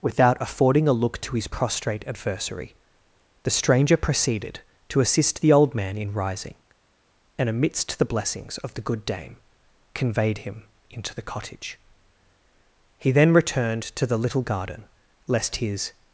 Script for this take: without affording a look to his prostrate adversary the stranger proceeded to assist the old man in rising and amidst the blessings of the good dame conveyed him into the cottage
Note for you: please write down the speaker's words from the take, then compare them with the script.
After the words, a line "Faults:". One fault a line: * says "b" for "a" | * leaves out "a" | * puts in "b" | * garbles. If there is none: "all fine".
without affording a look to his prostrate adversary the stranger proceeded to assist the old man in rising and amidst the blessings of the good dame conveyed him into the cottage he then returned to the little garden lest his
Faults:
* puts in "he then returned to the little garden lest his"